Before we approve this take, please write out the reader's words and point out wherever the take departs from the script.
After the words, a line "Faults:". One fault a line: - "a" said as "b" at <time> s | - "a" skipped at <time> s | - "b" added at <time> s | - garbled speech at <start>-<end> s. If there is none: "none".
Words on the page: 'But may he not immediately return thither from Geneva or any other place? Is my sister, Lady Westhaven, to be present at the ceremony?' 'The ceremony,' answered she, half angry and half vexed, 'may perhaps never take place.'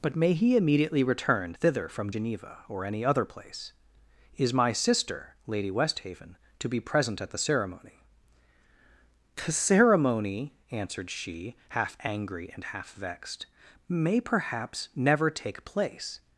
'But may he immediately return thither from Geneva or any other place? Is my sister, Lady Westhaven, to be present at the ceremony?' 'The ceremony,' answered she, half angry and half vexed, 'may perhaps never take place.'
Faults:
- "not" skipped at 0.6 s